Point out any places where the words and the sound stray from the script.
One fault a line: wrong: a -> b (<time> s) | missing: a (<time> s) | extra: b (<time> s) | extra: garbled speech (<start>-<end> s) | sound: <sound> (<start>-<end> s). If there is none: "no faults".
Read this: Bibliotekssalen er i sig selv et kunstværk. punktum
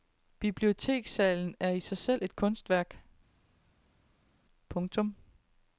no faults